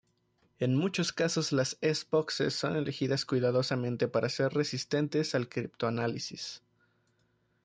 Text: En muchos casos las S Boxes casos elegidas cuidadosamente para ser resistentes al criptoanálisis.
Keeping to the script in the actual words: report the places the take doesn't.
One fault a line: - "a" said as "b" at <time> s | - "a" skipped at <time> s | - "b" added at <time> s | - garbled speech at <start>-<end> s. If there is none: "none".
- "casos" said as "son" at 2.5 s